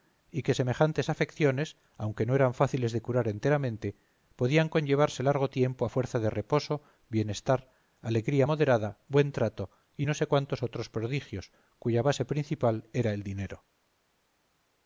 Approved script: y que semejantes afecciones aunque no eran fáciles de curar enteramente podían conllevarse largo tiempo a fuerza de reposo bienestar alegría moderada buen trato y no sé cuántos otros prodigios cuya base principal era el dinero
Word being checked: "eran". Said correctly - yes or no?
yes